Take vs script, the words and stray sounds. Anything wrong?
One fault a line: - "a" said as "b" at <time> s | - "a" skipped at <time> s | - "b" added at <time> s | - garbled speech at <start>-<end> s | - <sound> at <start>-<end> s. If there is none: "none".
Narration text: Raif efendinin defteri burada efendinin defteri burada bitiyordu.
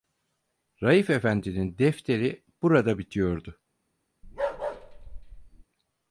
- "efendinin defteri burada" skipped at 3.0 s
- bark at 4.2-5.6 s